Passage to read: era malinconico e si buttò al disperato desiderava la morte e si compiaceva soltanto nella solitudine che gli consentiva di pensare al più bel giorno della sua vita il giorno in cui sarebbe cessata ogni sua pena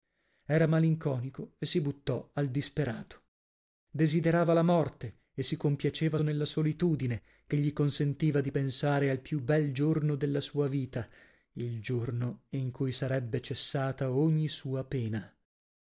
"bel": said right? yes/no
yes